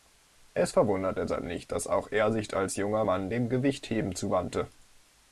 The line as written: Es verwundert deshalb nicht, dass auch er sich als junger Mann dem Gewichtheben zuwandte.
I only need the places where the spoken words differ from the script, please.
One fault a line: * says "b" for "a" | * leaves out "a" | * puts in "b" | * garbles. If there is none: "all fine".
all fine